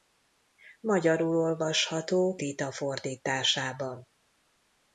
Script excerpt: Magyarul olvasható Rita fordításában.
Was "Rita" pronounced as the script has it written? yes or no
yes